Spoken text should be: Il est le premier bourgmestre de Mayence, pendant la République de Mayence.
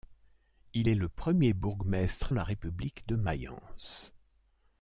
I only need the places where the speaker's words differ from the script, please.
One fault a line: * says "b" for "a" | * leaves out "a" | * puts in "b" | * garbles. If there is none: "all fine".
* leaves out "de Mayence pendant"